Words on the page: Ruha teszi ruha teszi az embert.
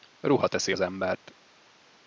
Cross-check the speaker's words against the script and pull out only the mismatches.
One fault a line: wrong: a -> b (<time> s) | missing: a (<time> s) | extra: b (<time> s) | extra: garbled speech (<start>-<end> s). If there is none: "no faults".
missing: ruha teszi (0.7 s)